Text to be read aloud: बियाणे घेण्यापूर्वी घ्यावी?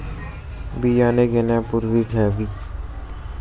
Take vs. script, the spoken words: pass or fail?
pass